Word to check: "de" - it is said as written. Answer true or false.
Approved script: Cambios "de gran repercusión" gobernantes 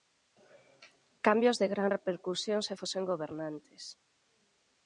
true